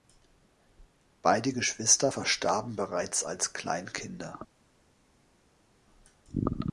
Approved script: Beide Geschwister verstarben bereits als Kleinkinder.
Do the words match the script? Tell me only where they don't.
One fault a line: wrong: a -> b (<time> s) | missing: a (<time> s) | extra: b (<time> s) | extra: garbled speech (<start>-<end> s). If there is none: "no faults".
no faults